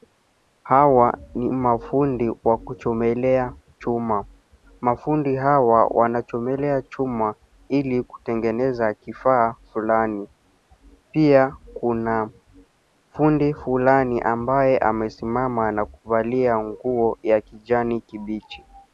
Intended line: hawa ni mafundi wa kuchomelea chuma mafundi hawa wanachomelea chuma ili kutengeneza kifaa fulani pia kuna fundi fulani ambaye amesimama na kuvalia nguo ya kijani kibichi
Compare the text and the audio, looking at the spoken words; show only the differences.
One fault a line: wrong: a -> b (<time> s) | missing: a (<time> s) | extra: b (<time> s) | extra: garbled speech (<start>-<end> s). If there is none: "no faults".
no faults